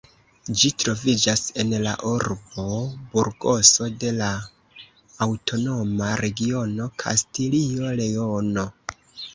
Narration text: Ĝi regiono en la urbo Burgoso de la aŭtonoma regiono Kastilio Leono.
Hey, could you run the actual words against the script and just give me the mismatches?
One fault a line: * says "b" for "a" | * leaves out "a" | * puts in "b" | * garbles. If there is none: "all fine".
* says "troviĝas" for "regiono"